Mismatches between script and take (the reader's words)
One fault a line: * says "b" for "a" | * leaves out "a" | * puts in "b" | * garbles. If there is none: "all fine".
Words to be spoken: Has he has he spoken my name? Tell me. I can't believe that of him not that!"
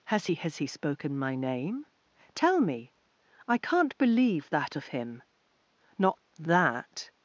all fine